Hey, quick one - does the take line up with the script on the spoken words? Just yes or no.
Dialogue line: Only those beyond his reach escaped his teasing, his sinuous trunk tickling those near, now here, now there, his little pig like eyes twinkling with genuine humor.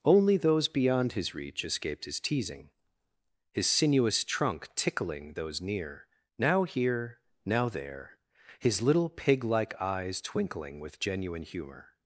yes